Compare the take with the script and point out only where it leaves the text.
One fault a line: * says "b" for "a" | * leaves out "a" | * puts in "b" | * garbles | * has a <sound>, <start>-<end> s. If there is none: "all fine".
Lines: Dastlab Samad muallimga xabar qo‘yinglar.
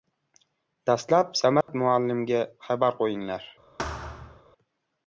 * has a dropout, 1.6-1.7 s
* has a thud, 3.8-4.4 s